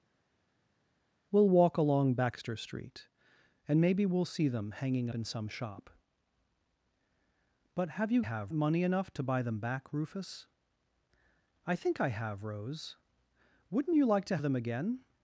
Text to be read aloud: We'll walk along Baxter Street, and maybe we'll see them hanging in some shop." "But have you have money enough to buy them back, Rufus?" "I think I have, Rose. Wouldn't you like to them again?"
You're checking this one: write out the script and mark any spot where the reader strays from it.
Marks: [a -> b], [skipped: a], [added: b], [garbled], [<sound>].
We'll walk along Baxter Street, and maybe we'll see them hanging in some shop." "But have you have money enough to buy them back, Rufus?" "I think I have, Rose. Wouldn't you like to them again?"